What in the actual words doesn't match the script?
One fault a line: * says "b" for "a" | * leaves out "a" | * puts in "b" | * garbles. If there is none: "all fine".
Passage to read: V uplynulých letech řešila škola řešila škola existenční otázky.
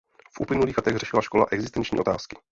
* leaves out "řešila škola"